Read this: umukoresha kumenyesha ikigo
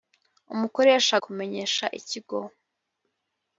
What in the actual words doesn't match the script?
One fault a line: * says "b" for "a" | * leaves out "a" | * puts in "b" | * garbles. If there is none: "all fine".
all fine